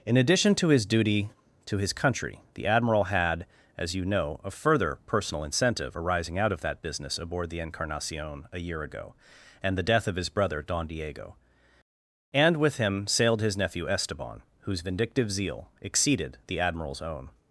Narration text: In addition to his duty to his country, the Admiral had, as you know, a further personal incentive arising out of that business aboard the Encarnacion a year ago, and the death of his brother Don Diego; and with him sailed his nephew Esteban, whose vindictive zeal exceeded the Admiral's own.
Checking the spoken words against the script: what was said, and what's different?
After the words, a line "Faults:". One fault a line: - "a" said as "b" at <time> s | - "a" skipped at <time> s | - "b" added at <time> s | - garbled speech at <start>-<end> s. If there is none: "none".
In addition to his duty to his country, the Admiral had, as you know, a further personal incentive arising out of that business aboard the Encarnacion a year ago, and the death of his brother Don Diego; and with him sailed his nephew Esteban, whose vindictive zeal exceeded the Admiral's own.
Faults:
none